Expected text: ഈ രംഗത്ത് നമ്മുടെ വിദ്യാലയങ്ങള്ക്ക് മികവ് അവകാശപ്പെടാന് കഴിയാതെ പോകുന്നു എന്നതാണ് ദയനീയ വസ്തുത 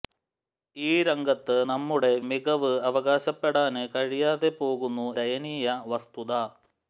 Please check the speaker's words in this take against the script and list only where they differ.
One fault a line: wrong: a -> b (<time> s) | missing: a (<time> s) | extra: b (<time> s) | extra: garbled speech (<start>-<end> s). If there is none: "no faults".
missing: വിദ്യാലയങ്ങള്ക്ക് (2.1 s)
missing: എന്നതാണ് (5.1 s)